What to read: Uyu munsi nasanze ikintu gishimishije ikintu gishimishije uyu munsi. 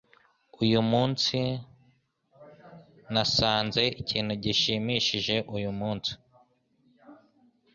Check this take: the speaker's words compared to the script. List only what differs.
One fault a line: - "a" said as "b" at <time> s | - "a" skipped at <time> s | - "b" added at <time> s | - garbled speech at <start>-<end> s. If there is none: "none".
- "ikintu gishimishije" skipped at 5.3 s